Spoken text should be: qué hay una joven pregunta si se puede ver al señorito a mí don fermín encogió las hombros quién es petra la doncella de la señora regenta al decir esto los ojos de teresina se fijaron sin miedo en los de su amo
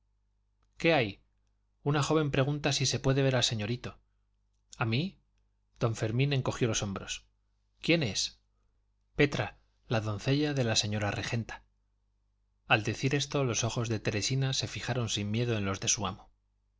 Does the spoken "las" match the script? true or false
false